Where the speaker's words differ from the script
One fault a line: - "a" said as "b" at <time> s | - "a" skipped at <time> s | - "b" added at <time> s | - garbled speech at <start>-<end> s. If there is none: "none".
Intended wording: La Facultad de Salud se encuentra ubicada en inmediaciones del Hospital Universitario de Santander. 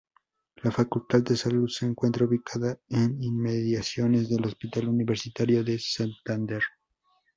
none